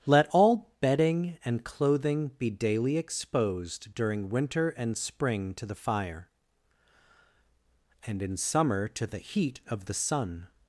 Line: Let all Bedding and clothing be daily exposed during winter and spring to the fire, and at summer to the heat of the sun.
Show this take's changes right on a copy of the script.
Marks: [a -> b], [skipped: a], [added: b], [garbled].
Let all Bedding and clothing be daily exposed during winter and spring to the fire, and [at -> in] summer to the heat of the sun.